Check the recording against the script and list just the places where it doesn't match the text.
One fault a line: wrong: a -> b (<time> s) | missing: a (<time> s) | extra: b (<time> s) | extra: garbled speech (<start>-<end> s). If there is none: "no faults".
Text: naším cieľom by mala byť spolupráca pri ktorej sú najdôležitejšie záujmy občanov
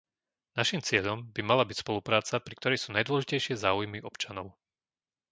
no faults